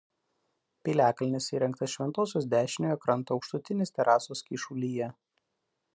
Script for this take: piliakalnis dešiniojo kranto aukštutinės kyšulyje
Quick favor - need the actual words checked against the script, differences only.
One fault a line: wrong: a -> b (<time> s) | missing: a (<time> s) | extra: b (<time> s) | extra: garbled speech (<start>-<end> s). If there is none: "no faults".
extra: įrengtas šventosios (1.6 s)
extra: terasos (4.0 s)